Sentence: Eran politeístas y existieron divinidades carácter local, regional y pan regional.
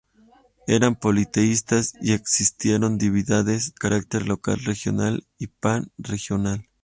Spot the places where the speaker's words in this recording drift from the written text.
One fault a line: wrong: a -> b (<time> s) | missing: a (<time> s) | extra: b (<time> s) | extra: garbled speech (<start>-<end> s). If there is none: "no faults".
no faults